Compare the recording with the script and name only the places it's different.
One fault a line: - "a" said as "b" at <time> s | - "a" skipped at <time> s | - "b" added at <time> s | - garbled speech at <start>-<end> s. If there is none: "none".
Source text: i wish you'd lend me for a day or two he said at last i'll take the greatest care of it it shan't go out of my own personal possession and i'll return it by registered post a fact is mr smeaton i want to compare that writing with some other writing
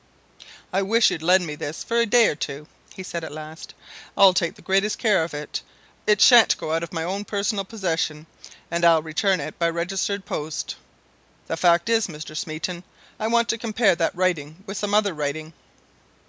- "this" added at 1.5 s
- "a" said as "the" at 11.4 s